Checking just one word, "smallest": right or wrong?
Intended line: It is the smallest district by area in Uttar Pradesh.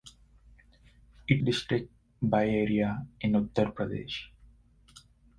wrong